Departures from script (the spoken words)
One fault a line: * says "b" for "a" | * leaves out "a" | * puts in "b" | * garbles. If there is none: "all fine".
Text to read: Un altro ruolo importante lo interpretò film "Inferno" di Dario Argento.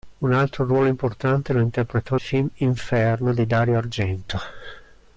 all fine